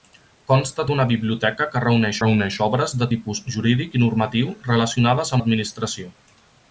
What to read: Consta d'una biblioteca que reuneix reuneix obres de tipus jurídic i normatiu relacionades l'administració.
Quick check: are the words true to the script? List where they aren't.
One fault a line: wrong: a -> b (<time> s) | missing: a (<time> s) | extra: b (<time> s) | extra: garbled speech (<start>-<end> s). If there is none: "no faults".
no faults